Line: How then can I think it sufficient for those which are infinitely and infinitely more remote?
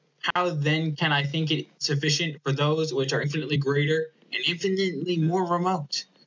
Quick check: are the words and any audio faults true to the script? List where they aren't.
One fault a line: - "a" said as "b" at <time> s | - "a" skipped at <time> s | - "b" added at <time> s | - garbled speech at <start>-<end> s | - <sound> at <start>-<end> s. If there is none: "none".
- dropout at 0.3-0.4 s
- "greater" added at 3.6 s